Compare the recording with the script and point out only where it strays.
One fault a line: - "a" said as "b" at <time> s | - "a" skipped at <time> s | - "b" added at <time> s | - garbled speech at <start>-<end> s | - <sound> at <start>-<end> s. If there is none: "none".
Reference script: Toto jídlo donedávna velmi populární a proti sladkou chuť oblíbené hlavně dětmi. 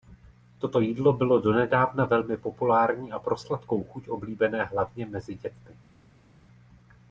- "bylo" added at 1.1 s
- "proti" said as "pro" at 3.2 s
- "mezi" added at 5.0 s